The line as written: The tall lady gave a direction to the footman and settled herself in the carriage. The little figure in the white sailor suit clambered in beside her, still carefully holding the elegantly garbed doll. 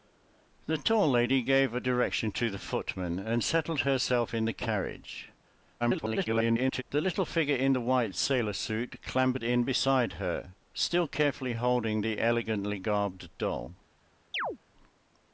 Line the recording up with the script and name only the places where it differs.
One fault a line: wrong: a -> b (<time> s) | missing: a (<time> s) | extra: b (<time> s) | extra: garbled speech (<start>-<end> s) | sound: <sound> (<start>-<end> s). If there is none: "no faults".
extra: garbled speech (5.8-6.8 s)
sound: chirp (14.3-14.6 s)